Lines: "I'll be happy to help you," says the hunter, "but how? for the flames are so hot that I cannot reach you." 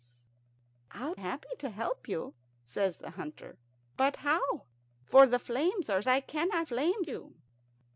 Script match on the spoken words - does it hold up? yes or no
no